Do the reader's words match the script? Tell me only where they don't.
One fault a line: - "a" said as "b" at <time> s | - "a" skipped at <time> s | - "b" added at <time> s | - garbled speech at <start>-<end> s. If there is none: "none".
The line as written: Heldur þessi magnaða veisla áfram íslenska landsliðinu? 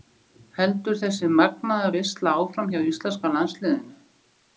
- "hjá" added at 2.7 s